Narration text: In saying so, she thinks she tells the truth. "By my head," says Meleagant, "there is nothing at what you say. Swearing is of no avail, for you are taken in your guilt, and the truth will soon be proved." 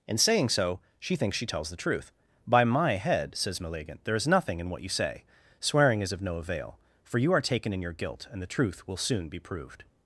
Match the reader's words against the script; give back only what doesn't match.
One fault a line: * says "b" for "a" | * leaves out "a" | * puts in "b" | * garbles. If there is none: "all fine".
* says "in" for "at"